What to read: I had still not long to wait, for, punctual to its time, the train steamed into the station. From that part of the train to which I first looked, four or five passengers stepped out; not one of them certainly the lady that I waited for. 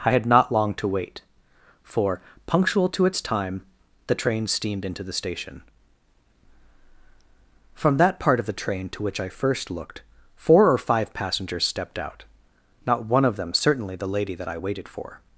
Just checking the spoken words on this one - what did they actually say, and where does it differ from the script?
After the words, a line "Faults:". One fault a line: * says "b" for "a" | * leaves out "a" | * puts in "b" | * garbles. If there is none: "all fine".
I had not long to wait, for, punctual to its time, the train steamed into the station. From that part of the train to which I first looked, four or five passengers stepped out; not one of them certainly the lady that I waited for.
Faults:
* leaves out "still"